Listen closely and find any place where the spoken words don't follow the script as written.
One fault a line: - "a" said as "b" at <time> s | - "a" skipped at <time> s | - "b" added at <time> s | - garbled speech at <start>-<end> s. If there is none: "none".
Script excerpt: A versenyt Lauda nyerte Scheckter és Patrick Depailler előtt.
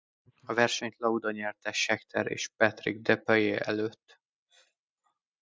none